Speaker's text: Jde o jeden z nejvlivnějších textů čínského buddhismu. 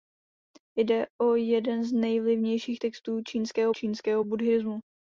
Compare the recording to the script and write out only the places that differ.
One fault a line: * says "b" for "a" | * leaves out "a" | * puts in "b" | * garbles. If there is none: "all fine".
* puts in "čínského"